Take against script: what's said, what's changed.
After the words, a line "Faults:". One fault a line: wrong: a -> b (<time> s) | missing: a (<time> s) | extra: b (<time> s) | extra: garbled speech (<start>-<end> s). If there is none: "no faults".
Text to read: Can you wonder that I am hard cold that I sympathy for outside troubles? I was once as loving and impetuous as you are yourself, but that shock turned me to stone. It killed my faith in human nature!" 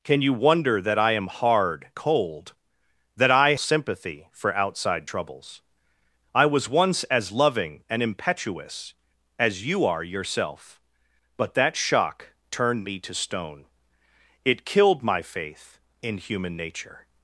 Can you wonder that I am hard cold that I sympathy for outside troubles? I was once as loving and impetuous as you are yourself, but that shock turned me to stone. It killed my faith in human nature!"
Faults:
no faults